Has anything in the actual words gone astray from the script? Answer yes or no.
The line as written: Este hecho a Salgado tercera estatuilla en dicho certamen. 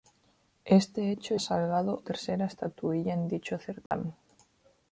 no